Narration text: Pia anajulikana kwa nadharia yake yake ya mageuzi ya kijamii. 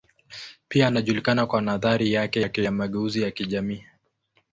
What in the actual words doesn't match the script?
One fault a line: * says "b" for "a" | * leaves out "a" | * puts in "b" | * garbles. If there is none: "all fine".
all fine